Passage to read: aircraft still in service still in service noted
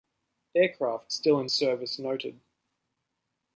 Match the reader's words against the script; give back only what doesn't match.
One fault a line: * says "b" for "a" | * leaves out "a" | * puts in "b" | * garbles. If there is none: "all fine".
* leaves out "still in service"